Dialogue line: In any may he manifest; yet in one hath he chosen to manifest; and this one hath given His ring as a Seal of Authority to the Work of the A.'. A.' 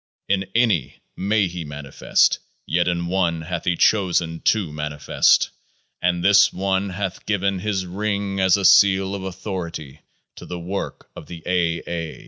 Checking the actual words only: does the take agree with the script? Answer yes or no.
yes